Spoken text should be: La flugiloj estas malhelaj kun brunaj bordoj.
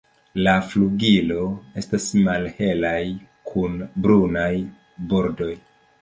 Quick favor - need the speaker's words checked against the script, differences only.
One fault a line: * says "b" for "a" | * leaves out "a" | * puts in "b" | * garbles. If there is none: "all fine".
all fine